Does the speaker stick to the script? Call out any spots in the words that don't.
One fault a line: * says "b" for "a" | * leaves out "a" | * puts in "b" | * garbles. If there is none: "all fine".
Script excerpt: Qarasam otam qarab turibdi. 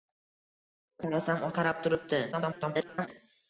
* leaves out "otam"
* garbles